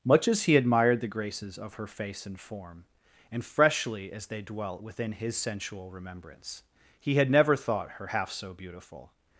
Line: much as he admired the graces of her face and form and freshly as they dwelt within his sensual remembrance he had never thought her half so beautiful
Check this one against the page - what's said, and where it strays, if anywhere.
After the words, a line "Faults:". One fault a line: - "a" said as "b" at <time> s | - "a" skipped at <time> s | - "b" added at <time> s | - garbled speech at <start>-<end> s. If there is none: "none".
much as he admired the graces of her face and form and freshly as they dwelt within his sensual remembrance he had never thought her half so beautiful
Faults:
none